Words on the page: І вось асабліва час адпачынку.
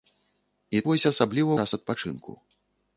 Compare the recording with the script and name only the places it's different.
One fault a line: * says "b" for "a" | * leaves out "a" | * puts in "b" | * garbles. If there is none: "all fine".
all fine